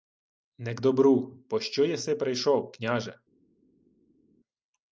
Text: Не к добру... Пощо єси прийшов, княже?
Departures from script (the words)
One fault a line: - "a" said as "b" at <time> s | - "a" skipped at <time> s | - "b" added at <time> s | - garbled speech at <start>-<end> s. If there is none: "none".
none